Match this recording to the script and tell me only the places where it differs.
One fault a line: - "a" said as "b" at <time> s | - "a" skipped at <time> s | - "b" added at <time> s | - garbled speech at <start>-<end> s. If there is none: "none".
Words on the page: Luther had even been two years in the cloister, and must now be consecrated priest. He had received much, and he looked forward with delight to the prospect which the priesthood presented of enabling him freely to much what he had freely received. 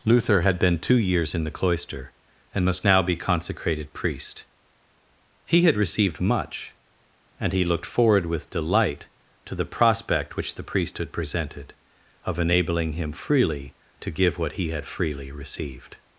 - "even" skipped at 0.6 s
- "much" said as "give" at 14.1 s